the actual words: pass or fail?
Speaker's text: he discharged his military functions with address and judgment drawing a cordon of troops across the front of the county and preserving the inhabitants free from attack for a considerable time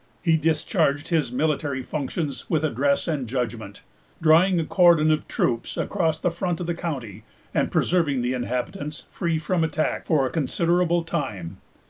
pass